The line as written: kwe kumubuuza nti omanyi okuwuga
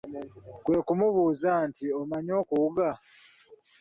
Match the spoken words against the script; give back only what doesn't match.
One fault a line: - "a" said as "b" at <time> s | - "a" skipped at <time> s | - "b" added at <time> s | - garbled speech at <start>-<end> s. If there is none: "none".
none